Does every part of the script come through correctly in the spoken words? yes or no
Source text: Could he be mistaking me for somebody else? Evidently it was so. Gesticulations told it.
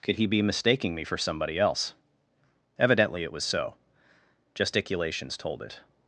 yes